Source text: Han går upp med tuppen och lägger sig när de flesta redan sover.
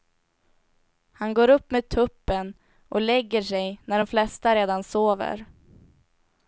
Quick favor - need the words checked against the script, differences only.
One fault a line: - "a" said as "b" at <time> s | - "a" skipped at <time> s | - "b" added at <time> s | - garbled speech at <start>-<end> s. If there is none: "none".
none